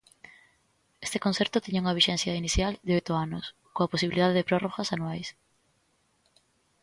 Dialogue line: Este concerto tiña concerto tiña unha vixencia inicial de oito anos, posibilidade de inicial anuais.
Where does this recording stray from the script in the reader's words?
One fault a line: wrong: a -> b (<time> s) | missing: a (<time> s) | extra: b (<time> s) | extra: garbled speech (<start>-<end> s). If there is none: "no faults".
missing: concerto tiña (1.8 s)
extra: coa (3.7 s)
wrong: inicial -> prórrogas (4.5 s)